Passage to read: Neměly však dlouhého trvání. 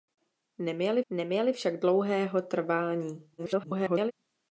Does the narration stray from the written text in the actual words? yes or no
yes